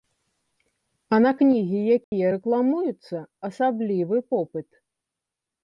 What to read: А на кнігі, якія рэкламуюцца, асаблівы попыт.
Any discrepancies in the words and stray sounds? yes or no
yes